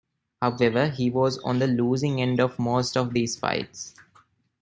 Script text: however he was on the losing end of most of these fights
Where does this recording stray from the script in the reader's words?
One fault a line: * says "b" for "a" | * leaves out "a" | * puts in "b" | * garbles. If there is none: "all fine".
all fine